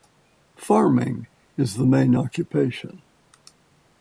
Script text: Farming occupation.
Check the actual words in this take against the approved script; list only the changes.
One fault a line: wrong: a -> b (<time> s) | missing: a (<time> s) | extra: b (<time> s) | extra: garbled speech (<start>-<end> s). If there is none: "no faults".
extra: is the main (1.6 s)